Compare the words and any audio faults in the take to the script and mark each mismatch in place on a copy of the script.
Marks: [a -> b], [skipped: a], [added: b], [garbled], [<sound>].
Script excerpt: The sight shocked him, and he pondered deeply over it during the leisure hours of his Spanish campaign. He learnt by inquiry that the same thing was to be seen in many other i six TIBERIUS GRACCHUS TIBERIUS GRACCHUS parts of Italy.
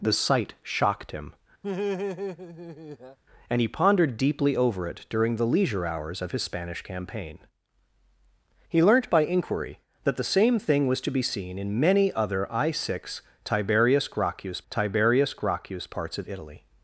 The sight shocked him, [laugh] and he pondered deeply over it during the leisure hours of his Spanish campaign. He learnt by inquiry that the same thing was to be seen in many other i six TIBERIUS GRACCHUS TIBERIUS GRACCHUS parts of Italy.